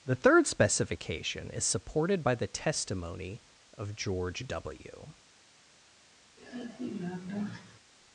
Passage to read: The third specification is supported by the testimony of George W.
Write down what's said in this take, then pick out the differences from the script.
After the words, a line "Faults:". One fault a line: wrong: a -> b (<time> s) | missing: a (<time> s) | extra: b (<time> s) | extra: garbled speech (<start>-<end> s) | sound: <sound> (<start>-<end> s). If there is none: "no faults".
The third specification is supported by the testimony of George W.
Faults:
sound: sigh (6.4-7.8 s)